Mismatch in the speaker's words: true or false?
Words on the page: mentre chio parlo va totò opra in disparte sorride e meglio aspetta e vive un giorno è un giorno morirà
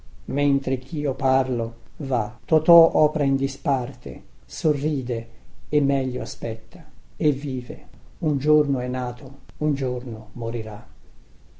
true